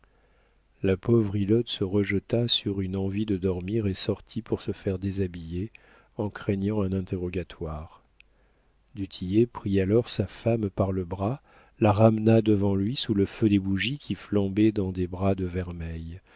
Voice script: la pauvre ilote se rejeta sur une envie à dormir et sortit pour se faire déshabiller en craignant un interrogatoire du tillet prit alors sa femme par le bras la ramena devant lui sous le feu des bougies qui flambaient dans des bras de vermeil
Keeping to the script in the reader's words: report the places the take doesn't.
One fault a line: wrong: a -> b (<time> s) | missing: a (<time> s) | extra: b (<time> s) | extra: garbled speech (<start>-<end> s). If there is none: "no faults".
wrong: à -> de (3.3 s)